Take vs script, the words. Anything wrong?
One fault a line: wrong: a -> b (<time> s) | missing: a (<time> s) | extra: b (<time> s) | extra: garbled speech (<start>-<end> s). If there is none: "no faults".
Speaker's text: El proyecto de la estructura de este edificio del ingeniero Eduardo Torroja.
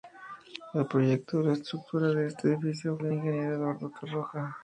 no faults